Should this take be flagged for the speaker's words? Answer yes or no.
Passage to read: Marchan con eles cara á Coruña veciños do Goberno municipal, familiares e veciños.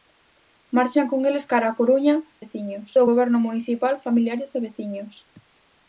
no